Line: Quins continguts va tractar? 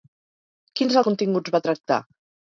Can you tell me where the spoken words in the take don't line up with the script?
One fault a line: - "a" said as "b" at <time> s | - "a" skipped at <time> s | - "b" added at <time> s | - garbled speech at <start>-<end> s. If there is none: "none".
none